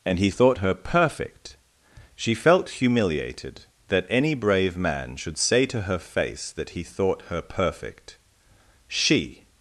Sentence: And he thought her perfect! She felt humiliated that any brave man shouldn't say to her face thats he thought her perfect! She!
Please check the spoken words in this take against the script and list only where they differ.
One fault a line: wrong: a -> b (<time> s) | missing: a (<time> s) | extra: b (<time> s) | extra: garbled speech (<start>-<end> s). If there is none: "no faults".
wrong: shouldn't -> should (5.1 s)
wrong: thats -> that (6.5 s)